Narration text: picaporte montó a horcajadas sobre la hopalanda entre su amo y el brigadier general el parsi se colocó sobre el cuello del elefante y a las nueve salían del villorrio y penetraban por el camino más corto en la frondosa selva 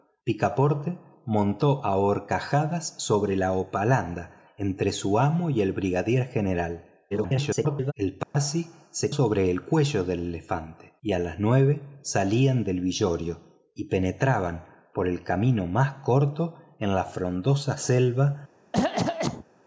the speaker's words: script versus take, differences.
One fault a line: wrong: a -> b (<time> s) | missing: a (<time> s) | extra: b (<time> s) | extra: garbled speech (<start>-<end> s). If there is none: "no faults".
extra: garbled speech (7.1-7.9 s)
missing: colocó (9.1 s)